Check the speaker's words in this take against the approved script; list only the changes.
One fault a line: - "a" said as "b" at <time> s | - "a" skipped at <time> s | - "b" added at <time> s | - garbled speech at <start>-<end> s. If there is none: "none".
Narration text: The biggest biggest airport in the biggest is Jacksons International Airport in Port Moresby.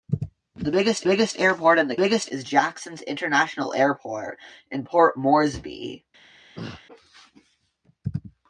none